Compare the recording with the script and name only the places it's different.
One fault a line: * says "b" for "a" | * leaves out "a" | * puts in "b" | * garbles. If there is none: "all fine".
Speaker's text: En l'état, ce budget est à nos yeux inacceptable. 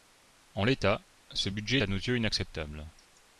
* leaves out "est"